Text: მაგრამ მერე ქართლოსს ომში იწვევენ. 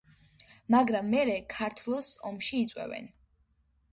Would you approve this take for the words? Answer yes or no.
yes